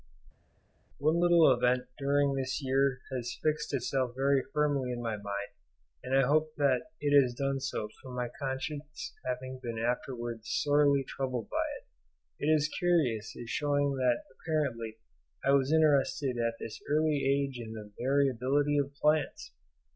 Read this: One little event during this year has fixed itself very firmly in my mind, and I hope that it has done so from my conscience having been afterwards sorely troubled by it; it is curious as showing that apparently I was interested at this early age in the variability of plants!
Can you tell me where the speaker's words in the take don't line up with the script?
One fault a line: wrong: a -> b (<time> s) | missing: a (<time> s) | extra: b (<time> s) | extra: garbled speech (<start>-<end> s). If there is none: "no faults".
no faults